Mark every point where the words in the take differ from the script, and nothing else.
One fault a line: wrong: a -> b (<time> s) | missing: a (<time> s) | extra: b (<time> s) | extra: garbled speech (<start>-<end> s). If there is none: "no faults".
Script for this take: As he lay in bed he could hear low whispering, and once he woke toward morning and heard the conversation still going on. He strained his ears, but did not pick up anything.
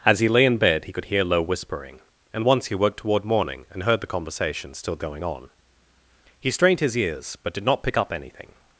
no faults